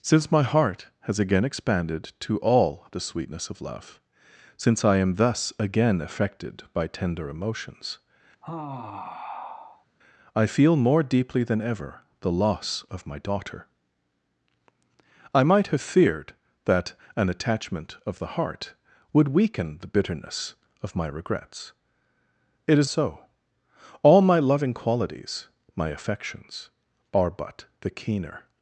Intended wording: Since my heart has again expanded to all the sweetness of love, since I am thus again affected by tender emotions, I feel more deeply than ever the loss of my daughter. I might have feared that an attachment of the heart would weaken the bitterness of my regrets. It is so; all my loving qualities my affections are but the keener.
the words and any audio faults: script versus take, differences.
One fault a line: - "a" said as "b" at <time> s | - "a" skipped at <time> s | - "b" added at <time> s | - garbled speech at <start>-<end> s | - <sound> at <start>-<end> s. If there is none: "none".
- sigh at 8.4-9.9 s